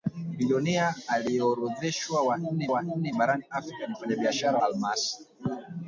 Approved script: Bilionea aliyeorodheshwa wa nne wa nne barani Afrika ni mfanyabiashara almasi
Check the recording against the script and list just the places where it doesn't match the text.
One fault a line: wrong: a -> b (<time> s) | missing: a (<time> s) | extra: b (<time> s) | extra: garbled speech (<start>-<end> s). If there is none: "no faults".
no faults